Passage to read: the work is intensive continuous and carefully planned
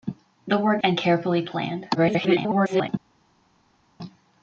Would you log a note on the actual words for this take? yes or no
yes